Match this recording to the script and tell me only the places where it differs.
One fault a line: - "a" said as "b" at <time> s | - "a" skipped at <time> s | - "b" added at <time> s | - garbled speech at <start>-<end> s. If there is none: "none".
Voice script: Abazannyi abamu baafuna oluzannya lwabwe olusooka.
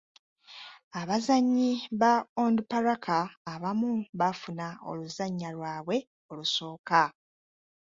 - "ba Onduparaka" added at 2.0 s